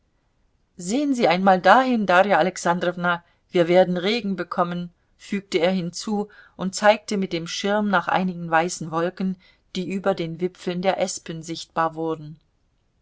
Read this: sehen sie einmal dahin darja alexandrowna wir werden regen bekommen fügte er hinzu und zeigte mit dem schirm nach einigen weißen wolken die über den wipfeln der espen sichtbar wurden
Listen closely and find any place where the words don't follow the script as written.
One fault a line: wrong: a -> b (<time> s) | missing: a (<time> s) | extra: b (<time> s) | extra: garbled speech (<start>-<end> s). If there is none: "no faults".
no faults